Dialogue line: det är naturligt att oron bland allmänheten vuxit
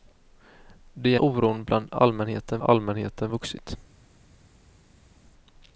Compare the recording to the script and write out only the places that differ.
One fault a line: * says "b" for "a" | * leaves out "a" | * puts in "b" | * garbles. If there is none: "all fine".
* leaves out "är naturligt att"
* puts in "allmänheten"